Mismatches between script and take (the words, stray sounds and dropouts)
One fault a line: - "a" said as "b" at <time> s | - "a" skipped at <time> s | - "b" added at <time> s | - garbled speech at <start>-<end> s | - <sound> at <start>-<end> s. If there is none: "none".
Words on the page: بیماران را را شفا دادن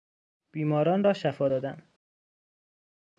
- "را" skipped at 1.1 s